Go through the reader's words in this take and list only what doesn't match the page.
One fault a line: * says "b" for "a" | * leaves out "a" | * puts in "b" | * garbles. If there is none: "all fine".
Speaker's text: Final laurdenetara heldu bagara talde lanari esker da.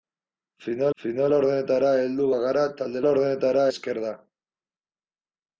* puts in "final"
* says "laurdenetara" for "lanari"